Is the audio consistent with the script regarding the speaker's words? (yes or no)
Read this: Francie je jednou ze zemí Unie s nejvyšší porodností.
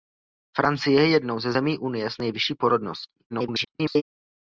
no